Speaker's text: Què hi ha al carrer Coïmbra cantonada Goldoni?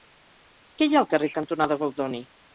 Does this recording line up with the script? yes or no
no